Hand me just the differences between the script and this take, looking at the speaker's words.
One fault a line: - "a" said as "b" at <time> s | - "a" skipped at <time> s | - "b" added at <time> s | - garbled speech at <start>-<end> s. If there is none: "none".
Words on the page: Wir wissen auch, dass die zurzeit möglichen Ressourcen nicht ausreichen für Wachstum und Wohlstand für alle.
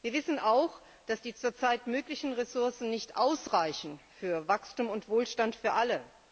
none